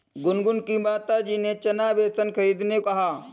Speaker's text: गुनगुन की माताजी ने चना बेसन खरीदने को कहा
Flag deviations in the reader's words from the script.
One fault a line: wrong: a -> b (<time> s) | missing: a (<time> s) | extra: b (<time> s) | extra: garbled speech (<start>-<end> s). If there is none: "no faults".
missing: को (2.8 s)